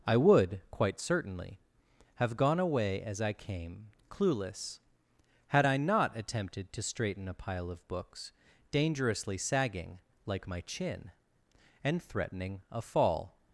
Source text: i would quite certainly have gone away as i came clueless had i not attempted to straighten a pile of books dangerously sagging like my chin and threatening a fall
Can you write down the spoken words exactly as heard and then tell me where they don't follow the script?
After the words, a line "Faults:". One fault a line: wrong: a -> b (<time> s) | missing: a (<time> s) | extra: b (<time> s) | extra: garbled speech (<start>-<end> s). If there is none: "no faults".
i would quite certainly have gone away as i came clueless had i not attempted to straighten a pile of books dangerously sagging like my chin and threatening a fall
Faults:
no faults